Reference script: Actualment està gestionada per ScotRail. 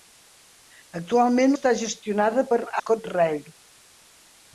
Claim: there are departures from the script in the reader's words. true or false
false